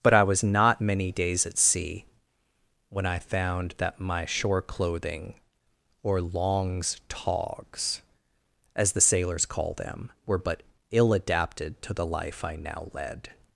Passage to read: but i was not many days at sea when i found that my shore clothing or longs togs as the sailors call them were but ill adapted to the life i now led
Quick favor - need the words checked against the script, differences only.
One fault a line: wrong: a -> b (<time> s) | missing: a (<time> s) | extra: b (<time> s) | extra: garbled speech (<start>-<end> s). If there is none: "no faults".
no faults